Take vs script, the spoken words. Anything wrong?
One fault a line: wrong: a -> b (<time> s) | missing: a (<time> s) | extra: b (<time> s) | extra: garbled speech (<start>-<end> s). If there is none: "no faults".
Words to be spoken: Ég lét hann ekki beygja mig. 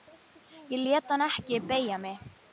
no faults